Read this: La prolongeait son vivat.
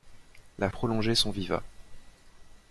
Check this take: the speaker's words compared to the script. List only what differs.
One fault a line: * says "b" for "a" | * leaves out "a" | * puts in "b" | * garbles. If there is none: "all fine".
all fine